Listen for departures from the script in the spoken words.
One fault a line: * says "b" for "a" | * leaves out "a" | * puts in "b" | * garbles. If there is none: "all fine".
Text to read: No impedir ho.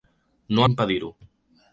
all fine